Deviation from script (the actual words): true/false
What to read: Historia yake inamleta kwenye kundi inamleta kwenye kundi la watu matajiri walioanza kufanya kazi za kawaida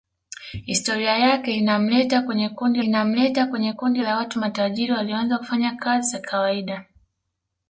false